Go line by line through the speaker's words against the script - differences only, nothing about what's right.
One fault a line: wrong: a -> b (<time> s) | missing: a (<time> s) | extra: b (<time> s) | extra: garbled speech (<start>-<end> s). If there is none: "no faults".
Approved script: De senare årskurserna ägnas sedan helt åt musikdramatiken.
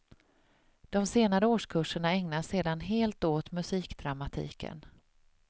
no faults